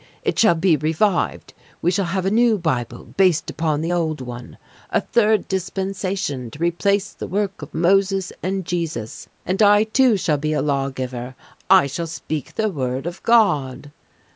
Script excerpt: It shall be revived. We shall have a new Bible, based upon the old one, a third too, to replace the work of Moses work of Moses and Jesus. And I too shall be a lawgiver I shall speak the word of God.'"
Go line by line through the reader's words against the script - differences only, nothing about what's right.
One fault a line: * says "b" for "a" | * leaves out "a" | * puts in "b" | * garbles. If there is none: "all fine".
* says "dispensation" for "too"
* leaves out "work of Moses"